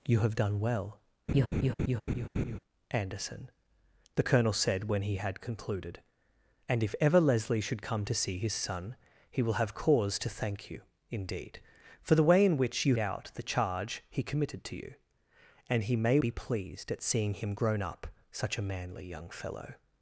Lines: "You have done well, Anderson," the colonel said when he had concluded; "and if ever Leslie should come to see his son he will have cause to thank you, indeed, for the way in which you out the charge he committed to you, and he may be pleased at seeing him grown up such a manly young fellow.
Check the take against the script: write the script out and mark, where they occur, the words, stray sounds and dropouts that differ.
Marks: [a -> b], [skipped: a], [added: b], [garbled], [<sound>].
"You have done well, [laugh] Anderson," the colonel said when he had concluded; "and if ever Leslie should come to see his son he will have cause to thank you, indeed, for the way in which you out the charge he committed to you, and he may be pleased at seeing him grown up such a manly young fellow.